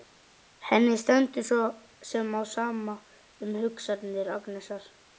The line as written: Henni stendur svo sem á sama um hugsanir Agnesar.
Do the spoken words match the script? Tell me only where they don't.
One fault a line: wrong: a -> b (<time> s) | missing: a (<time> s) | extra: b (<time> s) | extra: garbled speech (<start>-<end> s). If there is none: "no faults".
no faults